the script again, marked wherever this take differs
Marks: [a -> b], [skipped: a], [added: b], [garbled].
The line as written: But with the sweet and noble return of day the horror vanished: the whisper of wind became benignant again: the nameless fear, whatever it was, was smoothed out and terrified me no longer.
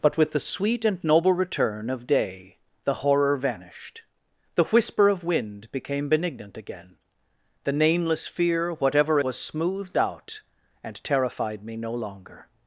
But with the sweet and noble return of day the horror vanished: the whisper of wind became benignant again: the nameless fear, whatever [skipped: it was,] was smoothed out and terrified me no longer.